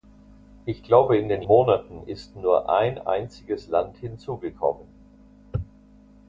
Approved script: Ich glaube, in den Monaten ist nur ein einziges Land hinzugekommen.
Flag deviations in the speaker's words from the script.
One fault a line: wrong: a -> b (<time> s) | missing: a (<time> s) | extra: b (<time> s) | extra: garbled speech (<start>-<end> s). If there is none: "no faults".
no faults